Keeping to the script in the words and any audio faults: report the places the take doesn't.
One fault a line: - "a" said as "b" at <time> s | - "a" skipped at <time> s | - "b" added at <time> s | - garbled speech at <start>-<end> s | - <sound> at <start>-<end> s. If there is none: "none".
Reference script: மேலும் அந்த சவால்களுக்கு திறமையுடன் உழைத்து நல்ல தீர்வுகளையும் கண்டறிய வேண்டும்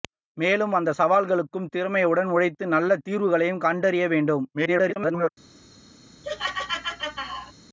- garbled speech at 4.5-5.3 s
- laugh at 6.2-7.5 s